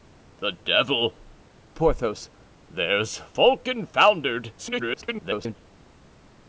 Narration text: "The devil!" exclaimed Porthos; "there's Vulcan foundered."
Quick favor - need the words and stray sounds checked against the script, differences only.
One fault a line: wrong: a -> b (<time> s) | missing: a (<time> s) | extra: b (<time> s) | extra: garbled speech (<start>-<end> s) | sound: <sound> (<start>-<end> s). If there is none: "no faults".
missing: exclaimed (1.2 s)
extra: garbled speech (4.6-5.6 s)